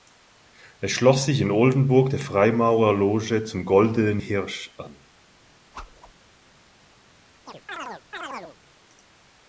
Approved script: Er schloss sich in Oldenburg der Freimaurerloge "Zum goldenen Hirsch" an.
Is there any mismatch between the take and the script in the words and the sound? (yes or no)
yes